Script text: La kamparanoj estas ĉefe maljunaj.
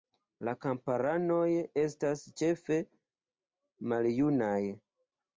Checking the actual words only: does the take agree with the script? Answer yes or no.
yes